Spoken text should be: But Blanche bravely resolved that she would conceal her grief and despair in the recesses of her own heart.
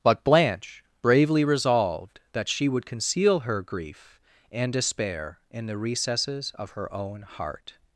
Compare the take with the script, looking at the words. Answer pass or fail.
pass